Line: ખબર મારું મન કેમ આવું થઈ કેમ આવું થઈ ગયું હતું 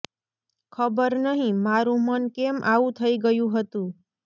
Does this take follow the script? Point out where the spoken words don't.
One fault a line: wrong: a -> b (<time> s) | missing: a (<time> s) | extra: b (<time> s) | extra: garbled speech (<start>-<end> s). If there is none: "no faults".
extra: નહીં (1.2 s)
missing: કેમ આવું થઈ (3.2 s)